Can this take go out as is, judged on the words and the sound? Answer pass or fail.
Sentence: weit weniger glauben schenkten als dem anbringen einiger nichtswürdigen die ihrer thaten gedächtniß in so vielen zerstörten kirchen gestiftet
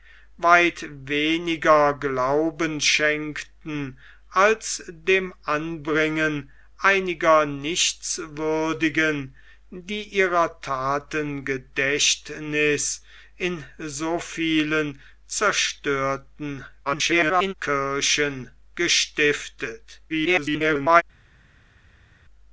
fail